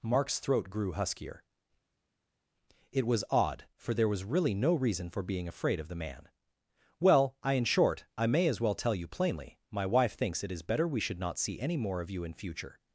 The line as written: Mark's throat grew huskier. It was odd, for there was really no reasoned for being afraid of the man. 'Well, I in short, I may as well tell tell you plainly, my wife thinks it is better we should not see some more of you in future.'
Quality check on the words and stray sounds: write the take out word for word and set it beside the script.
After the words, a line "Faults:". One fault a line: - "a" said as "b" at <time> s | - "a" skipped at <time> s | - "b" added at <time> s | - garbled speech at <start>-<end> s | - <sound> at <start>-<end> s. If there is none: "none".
Mark's throat grew huskier. It was odd, for there was really no reason for being afraid of the man. 'Well, I in short, I may as well tell you plainly, my wife thinks it is better we should not see any more of you in future.'
Faults:
- "reasoned" said as "reason" at 4.8 s
- "tell" skipped at 8.9 s
- "some" said as "any" at 11.6 s